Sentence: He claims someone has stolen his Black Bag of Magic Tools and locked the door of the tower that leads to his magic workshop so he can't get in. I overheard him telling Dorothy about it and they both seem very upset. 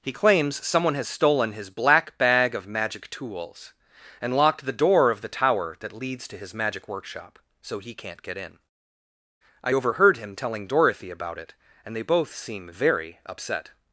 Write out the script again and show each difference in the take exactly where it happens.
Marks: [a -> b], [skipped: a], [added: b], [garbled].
He claims someone has stolen his Black Bag of Magic Tools and locked the door of the tower that leads to his magic workshop so he can't get in. I overheard him telling Dorothy about it and they both seem very upset.